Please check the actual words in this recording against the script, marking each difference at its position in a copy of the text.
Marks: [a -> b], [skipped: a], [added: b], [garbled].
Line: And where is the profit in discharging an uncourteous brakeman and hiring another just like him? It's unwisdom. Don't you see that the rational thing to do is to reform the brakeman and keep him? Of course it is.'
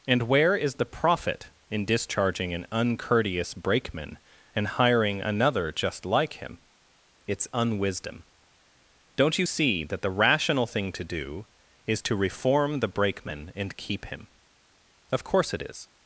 And where is the profit in discharging an uncourteous brakeman and hiring another just like him? It's unwisdom. Don't you see that the rational thing to do is to reform the brakeman and keep him? Of course it is.'